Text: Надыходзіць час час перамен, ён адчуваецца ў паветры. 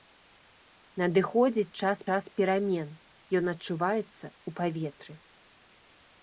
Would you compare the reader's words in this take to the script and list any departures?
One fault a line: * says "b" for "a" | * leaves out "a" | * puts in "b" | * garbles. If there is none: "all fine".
all fine